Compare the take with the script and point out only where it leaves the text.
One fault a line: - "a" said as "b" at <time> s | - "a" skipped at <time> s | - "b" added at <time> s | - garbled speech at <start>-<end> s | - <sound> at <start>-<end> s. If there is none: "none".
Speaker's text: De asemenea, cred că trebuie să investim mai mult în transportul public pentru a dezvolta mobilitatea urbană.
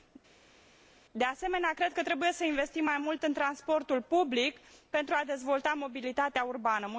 none